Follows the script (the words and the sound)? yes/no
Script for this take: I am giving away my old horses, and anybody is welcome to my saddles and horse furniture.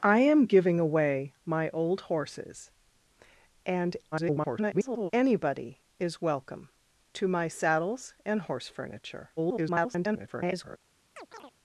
no